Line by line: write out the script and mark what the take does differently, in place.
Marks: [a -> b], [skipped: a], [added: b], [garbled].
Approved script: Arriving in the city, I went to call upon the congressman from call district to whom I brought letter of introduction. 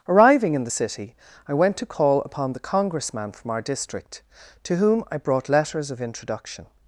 Arriving in the city, I went to call upon the congressman from [call -> our] district to whom I brought [letter -> letters] of introduction.